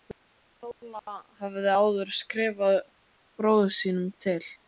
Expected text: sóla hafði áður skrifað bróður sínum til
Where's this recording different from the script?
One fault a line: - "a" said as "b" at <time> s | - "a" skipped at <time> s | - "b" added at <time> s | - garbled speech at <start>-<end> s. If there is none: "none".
none